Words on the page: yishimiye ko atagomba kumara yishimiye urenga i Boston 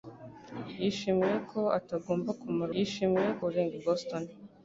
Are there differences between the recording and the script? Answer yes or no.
no